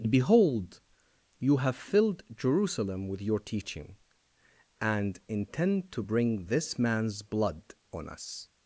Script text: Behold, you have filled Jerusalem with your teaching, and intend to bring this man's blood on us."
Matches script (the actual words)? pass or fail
pass